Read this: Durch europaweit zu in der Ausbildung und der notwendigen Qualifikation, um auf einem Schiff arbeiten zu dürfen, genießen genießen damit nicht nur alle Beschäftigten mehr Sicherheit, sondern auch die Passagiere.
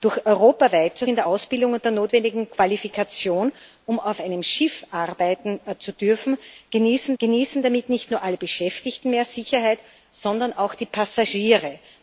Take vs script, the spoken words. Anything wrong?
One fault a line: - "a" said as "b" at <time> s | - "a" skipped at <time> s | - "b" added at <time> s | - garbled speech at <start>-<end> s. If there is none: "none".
none